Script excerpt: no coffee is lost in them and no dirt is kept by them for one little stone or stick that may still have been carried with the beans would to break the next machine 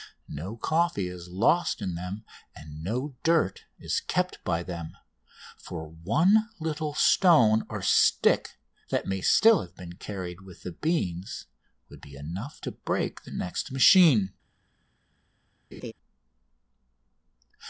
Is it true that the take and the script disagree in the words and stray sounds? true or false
true